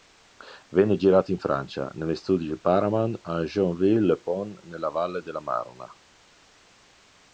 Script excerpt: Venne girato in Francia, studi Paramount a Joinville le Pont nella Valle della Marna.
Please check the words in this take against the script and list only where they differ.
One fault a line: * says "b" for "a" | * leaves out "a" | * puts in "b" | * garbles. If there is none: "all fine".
* puts in "negli"